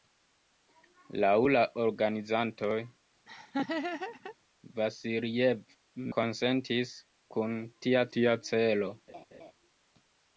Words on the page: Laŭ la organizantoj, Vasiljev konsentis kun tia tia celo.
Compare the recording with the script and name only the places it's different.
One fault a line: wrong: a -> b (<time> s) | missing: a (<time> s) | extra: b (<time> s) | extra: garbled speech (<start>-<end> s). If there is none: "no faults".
no faults